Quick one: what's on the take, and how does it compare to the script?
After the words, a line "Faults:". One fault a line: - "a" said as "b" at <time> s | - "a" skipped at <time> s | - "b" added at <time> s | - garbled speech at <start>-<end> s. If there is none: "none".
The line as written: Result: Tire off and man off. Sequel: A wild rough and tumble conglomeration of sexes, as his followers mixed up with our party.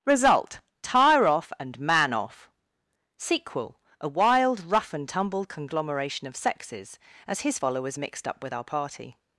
Result: Tire off and man off. Sequel: A wild rough and tumble conglomeration of sexes, as his followers mixed up with our party.
Faults:
none